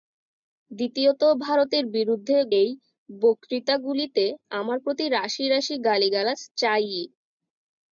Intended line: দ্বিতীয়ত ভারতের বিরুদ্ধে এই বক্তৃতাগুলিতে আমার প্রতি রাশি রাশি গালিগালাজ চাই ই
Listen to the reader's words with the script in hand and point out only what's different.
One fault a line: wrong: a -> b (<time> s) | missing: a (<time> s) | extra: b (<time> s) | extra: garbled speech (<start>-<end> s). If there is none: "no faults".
no faults